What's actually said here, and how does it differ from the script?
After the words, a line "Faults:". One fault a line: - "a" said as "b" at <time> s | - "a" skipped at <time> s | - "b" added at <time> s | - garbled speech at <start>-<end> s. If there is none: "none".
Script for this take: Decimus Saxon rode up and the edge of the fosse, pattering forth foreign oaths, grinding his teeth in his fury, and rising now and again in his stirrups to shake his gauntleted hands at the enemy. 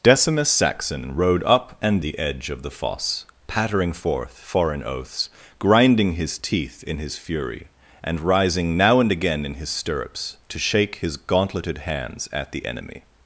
Decimus Saxon rode up and the edge of the fosse, pattering forth foreign oaths, grinding his teeth in his fury, and rising now and again in his stirrups to shake his gauntleted hands at the enemy.
Faults:
none